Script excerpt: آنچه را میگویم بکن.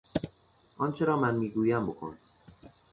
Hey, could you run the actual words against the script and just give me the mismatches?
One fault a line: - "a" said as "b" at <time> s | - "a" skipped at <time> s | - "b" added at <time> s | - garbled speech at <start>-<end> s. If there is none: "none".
- "من" added at 1.2 s